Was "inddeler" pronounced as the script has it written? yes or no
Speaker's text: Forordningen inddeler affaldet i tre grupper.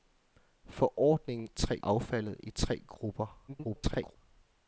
no